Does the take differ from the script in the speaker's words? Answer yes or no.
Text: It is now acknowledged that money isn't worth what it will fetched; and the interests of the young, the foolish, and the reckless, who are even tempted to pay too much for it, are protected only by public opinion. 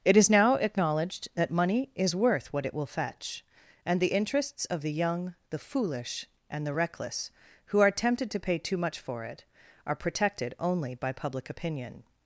yes